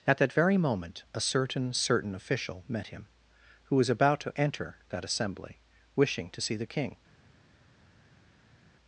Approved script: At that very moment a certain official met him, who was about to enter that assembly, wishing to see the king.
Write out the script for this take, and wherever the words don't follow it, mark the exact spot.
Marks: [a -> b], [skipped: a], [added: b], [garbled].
At that very moment a certain [added: certain] official met him, who was about to enter that assembly, wishing to see the king.